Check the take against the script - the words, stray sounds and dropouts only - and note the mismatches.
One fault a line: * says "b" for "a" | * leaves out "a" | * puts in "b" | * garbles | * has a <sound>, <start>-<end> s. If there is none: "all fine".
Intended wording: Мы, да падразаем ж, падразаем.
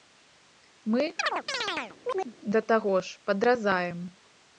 * has a chirp, 1.2-2.3 s
* says "таго" for "падразаем"